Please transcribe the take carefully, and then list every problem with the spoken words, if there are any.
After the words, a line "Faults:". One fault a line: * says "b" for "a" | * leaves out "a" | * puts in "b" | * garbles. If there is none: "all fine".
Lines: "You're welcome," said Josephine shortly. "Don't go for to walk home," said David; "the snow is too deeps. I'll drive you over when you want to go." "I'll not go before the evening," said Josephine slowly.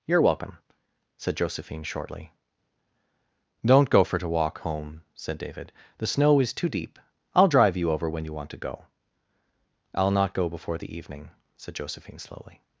"You're welcome," said Josephine shortly. "Don't go for to walk home," said David; "the snow is too deep. I'll drive you over when you want to go." "I'll not go before the evening," said Josephine slowly.
Faults:
* says "deep" for "deeps"